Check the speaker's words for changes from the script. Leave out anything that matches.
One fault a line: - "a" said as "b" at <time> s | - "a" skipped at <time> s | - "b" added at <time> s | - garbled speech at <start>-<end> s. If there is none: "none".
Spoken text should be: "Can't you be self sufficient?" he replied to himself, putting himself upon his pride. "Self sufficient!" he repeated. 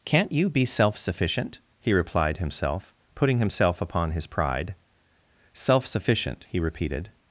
- "to" skipped at 2.4 s